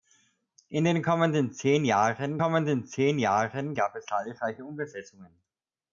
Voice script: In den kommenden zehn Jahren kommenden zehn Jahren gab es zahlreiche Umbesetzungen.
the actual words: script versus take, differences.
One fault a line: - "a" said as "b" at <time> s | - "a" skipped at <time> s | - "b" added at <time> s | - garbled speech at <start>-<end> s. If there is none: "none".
none